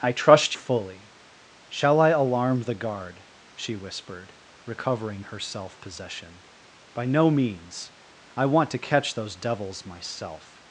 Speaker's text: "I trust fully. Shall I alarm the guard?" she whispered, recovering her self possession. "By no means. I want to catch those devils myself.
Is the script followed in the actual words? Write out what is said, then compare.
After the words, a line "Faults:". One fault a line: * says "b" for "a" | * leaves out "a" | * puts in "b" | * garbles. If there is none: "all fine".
"I trust fully. Shall I alarm the guard?" she whispered, recovering her self possession. "By no means. I want to catch those devils myself.
Faults:
all fine